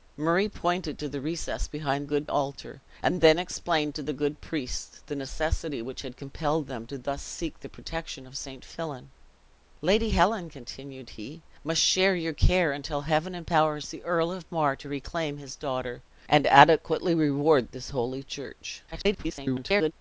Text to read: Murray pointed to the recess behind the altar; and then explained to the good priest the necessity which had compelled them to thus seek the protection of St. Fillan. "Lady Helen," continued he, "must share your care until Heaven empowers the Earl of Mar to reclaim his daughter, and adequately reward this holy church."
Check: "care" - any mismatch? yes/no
no